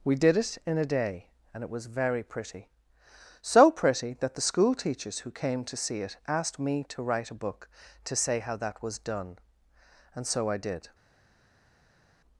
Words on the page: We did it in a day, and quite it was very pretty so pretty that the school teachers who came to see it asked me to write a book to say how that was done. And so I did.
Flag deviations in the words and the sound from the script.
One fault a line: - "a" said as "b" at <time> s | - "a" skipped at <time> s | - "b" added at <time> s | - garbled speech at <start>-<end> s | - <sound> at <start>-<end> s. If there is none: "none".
- "quite" skipped at 1.6 s